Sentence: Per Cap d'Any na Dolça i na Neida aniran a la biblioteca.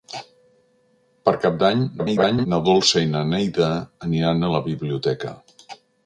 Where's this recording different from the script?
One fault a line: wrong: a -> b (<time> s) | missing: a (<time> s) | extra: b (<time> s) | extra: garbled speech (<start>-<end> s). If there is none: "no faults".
extra: garbled speech (2.0-2.5 s)